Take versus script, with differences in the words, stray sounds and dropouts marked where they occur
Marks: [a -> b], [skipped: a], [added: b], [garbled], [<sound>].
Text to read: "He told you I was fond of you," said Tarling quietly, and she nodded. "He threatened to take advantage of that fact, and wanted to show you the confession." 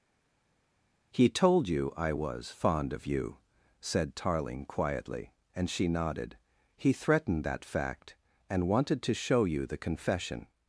"He told you I was fond of you," said Tarling quietly, and she nodded. "He threatened [skipped: to take advantage of] that fact, and wanted to show you the confession."